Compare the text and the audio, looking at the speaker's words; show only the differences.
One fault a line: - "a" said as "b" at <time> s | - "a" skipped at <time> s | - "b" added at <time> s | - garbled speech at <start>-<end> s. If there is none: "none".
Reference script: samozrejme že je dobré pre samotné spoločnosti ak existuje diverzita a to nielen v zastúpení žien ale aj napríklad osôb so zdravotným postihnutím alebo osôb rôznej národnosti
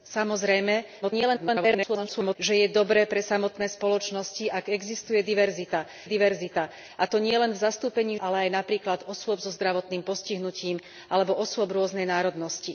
- garbled speech at 1.0-2.4 s
- "diverzita" added at 6.0 s
- "žien" skipped at 8.2 s